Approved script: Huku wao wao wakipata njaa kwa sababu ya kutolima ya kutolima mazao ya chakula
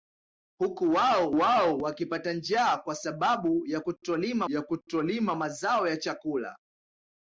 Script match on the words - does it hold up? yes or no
yes